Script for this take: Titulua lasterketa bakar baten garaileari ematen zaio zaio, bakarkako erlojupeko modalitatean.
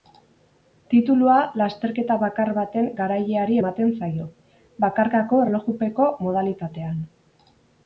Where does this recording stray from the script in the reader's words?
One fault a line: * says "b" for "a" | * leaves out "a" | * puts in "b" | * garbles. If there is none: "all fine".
* leaves out "zaio"